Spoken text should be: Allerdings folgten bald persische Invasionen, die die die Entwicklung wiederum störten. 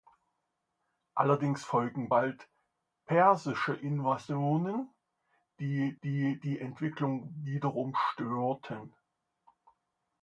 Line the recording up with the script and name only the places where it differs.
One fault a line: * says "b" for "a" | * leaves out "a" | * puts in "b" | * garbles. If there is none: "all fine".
all fine